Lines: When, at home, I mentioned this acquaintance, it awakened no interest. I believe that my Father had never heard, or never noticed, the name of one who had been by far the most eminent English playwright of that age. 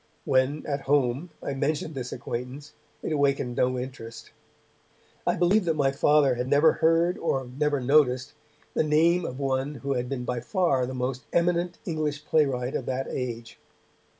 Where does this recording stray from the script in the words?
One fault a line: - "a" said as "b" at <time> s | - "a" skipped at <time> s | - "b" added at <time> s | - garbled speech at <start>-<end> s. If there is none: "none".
none